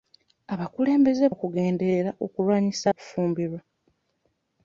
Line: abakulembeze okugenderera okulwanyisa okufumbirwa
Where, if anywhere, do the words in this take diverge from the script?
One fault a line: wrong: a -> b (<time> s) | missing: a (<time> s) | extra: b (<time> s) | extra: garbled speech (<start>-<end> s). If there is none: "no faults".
no faults